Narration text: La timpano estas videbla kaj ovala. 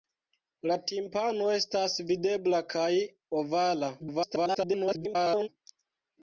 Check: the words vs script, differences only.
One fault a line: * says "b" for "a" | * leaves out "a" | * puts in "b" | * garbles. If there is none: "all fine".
* garbles